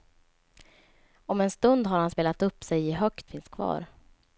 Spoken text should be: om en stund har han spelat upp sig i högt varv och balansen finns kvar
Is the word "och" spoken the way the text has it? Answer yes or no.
no